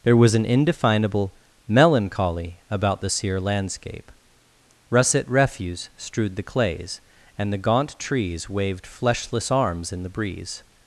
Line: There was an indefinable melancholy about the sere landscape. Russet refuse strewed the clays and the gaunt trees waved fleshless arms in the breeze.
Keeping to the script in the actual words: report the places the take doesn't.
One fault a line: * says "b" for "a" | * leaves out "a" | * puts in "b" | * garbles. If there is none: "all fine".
all fine